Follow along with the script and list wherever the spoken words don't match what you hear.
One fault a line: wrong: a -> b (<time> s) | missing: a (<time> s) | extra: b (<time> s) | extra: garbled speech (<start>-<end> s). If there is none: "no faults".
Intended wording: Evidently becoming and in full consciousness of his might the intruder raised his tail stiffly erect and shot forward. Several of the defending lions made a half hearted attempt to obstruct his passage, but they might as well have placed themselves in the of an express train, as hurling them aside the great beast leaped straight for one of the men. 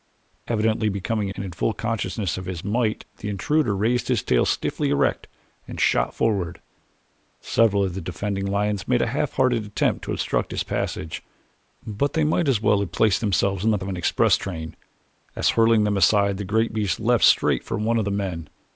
no faults